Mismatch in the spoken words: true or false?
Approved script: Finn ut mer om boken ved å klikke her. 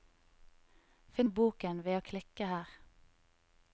true